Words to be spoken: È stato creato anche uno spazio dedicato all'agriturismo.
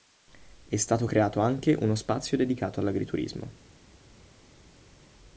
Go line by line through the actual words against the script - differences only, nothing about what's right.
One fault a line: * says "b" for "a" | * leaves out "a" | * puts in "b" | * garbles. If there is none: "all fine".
all fine